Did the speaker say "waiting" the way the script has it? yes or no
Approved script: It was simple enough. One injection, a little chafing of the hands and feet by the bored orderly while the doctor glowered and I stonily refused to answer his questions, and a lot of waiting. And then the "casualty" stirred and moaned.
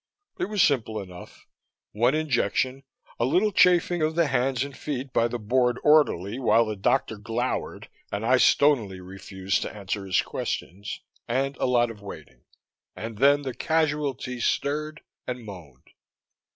yes